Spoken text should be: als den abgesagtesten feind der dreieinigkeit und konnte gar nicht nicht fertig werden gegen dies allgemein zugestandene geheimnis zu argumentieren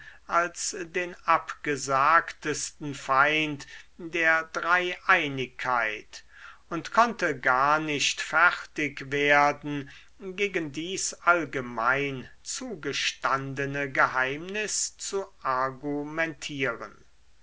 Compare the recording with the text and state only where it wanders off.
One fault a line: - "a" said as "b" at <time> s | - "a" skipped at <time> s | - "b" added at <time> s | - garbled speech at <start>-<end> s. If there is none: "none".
- "nicht" skipped at 8.2 s